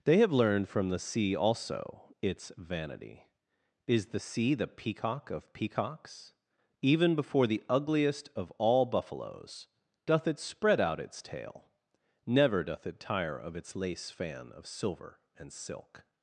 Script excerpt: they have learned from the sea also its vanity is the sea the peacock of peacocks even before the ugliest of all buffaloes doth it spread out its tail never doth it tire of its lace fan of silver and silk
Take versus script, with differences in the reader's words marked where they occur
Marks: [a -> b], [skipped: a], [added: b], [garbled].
they have learned from the sea also its vanity is the sea the peacock of peacocks even before the ugliest of all buffaloes doth it spread out its tail never doth it tire of its lace fan of silver and silk